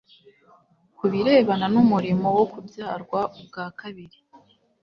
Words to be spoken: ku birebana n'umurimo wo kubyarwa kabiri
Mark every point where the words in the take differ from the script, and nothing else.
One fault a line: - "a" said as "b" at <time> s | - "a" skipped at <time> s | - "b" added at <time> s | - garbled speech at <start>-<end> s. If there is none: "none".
- "ubwa" added at 3.4 s